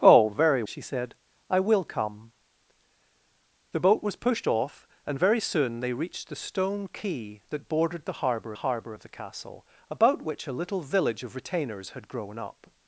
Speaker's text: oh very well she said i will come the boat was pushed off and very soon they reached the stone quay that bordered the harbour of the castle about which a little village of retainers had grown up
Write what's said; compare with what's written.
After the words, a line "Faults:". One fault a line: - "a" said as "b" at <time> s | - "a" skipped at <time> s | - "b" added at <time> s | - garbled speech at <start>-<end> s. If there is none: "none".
oh very she said i will come the boat was pushed off and very soon they reached the stone quay that bordered the harbour harbour of the castle about which a little village of retainers had grown up
Faults:
- "well" skipped at 0.6 s
- "harbour" added at 8.5 s